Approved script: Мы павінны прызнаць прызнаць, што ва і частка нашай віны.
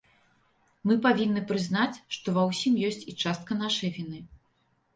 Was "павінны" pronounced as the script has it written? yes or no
yes